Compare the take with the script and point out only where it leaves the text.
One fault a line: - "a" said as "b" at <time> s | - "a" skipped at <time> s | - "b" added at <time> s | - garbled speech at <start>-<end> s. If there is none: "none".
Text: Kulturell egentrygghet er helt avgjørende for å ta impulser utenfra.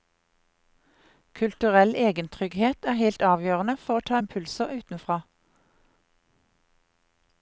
none